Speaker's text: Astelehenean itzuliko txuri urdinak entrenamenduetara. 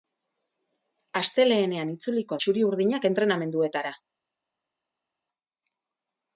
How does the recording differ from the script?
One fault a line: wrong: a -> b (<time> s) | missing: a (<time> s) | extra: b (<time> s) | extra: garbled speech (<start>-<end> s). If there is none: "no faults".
no faults